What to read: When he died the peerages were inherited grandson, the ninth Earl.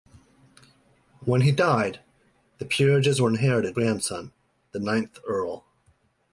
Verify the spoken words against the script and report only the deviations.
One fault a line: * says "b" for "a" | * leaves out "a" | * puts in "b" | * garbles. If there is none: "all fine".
all fine